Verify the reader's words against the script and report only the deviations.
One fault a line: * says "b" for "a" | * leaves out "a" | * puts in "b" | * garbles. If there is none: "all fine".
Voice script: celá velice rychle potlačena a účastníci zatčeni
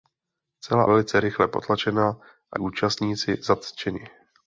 all fine